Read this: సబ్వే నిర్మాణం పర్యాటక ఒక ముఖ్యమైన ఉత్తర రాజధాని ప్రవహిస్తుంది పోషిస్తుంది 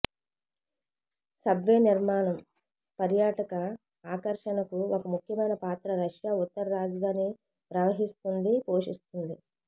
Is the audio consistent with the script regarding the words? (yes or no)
no